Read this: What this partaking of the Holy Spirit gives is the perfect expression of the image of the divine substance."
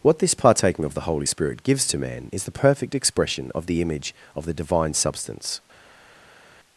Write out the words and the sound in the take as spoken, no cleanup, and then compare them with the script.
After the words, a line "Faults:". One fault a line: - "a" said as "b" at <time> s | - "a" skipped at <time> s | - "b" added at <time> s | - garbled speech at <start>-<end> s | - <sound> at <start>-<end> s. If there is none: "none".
What this partaking of the Holy Spirit gives to man is the perfect expression of the image of the divine substance."
Faults:
- "to man" added at 1.9 s